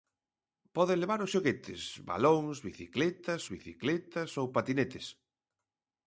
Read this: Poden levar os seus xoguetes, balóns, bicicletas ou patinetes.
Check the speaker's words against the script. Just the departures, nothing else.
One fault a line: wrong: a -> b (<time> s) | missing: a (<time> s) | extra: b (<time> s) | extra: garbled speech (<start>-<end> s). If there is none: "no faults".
missing: seus (1.3 s)
extra: bicicletas (3.5 s)